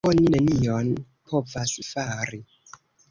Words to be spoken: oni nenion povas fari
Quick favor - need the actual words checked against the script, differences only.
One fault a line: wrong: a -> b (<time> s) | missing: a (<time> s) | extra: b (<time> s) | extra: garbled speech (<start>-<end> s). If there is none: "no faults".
no faults